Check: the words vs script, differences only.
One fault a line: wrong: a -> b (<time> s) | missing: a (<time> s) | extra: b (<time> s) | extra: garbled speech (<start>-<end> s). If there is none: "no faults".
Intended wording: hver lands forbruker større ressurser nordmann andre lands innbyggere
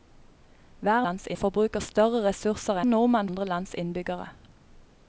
no faults